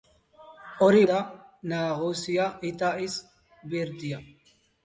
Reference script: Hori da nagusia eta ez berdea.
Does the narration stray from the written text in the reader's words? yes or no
no